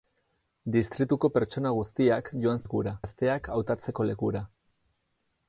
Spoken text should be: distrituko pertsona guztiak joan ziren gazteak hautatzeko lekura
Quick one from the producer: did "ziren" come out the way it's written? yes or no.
no